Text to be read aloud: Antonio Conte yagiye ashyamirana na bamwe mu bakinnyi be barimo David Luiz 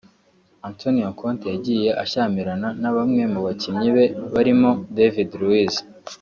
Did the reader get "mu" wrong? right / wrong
right